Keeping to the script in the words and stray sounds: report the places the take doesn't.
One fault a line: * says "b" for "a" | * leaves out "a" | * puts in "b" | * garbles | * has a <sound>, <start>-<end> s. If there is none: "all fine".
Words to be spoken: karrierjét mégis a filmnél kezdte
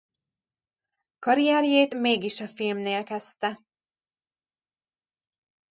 all fine